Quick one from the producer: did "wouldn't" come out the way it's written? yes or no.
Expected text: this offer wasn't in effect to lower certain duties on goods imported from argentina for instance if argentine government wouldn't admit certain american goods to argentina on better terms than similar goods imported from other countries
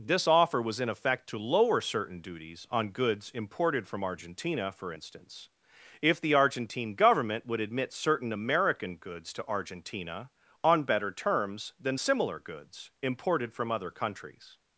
no